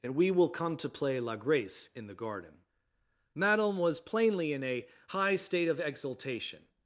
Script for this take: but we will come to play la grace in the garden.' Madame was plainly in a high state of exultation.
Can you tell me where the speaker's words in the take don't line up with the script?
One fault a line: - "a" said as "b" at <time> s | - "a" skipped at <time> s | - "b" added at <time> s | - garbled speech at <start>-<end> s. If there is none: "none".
- "but" said as "and" at 0.0 s